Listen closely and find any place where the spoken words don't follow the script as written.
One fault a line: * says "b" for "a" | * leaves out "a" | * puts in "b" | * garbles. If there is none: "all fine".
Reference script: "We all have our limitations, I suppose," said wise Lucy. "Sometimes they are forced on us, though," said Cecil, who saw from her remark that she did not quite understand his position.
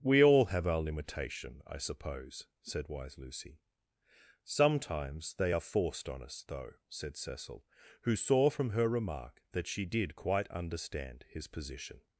* says "limitation" for "limitations"
* leaves out "not"